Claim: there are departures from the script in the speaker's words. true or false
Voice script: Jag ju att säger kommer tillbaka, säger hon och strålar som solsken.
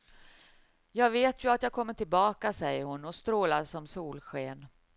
true